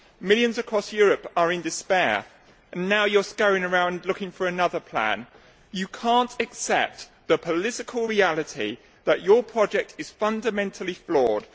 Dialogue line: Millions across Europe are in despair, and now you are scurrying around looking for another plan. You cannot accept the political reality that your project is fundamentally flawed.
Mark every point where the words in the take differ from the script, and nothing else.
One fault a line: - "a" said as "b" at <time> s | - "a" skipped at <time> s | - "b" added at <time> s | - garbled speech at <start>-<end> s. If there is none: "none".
none